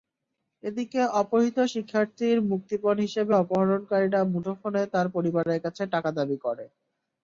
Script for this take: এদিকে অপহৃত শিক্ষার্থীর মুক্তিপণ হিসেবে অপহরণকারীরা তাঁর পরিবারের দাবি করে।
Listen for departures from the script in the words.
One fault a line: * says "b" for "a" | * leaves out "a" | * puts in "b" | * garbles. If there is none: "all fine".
* puts in "মুঠোফোনে"
* puts in "কাছে টাকা"